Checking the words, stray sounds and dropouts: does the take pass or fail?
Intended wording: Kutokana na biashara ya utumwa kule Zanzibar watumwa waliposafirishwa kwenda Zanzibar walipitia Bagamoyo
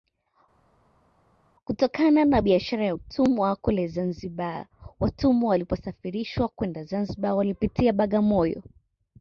pass